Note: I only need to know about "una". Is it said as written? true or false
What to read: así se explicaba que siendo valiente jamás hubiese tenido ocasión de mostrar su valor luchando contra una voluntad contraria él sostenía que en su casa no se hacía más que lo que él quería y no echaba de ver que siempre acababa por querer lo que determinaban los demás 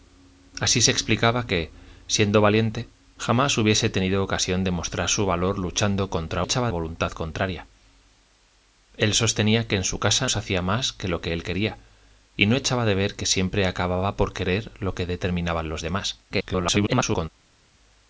false